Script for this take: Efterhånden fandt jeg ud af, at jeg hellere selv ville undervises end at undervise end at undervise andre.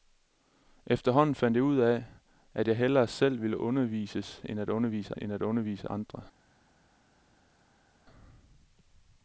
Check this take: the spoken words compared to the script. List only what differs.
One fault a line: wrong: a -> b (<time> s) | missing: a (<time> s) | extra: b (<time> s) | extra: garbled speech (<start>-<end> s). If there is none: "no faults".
no faults